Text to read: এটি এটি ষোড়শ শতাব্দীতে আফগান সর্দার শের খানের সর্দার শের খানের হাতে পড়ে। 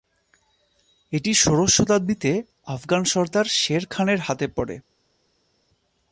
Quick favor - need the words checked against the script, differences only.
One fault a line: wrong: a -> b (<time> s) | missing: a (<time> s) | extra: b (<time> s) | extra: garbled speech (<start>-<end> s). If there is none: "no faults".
missing: এটি (1.3 s)
missing: সর্দার শের খানের (4.2 s)